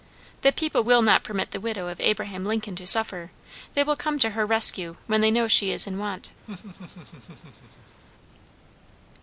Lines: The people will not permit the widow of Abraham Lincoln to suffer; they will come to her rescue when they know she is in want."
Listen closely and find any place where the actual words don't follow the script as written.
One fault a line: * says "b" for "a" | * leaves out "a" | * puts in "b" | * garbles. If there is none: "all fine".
all fine